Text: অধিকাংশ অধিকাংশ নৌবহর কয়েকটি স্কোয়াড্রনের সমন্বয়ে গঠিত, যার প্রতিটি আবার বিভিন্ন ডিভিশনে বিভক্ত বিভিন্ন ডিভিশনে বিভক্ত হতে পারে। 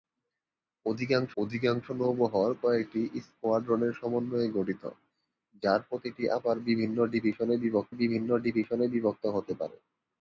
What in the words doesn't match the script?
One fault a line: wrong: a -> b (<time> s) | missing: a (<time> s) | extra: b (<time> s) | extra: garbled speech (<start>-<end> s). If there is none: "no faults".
no faults